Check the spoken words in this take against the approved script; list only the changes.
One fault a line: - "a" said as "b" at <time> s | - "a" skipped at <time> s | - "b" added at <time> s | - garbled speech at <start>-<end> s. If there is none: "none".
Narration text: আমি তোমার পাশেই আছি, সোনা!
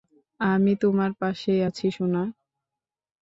none